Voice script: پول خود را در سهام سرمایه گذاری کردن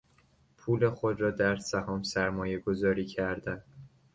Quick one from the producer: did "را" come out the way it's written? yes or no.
yes